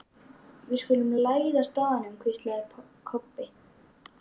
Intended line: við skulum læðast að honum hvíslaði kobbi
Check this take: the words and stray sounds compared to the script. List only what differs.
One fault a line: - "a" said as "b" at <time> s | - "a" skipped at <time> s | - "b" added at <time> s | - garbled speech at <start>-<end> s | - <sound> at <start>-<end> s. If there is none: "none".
none